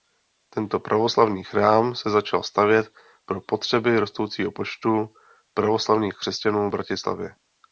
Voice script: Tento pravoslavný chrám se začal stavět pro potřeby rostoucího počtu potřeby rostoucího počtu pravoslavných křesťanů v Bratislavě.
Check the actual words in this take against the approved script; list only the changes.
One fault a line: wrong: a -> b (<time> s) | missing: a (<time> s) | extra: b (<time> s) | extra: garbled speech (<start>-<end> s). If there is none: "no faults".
missing: potřeby rostoucího počtu (5.1 s)